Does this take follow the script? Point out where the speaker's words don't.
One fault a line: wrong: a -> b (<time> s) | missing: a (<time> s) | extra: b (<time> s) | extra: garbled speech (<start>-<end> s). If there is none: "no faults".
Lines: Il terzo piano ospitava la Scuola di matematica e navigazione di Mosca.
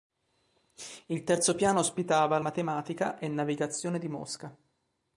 missing: la Scuola di (2.4 s)